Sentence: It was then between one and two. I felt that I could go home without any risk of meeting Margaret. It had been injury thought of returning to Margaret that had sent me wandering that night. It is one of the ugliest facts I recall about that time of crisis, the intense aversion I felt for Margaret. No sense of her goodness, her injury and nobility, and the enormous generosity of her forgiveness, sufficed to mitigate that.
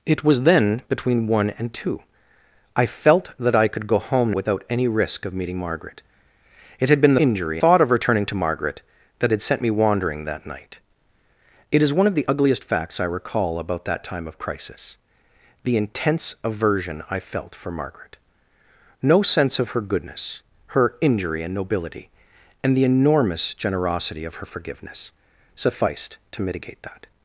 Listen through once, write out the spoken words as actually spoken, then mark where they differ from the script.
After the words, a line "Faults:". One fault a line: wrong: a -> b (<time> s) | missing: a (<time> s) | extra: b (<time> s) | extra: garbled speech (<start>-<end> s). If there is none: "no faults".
It was then between one and two. I felt that I could go home without any risk of meeting Margaret. It had been injury thought of returning to Margaret that had sent me wandering that night. It is one of the ugliest facts I recall about that time of crisis, the intense aversion I felt for Margaret. No sense of her goodness, her injury and nobility, and the enormous generosity of her forgiveness, sufficed to mitigate that.
Faults:
no faults